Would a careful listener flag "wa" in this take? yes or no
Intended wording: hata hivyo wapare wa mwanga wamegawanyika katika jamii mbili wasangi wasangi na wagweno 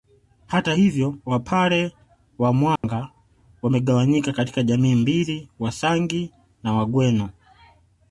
no